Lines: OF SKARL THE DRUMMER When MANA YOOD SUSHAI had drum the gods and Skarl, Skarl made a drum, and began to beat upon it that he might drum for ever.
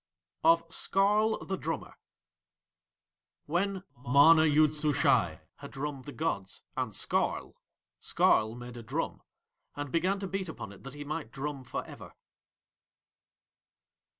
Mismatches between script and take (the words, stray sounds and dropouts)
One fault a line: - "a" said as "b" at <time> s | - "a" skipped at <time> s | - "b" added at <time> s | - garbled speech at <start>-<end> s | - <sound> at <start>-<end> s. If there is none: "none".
none